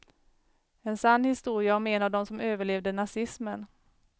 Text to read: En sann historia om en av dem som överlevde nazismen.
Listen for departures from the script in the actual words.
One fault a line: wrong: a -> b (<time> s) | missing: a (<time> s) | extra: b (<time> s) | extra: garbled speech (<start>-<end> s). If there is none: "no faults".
no faults